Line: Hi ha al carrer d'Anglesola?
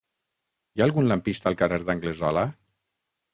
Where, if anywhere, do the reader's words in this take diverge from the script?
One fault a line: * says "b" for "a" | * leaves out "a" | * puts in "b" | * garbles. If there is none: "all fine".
* puts in "algun lampista"